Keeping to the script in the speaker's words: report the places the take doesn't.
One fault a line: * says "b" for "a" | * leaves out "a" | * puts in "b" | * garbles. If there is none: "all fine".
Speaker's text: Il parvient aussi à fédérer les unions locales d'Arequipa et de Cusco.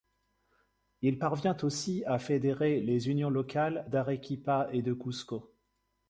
all fine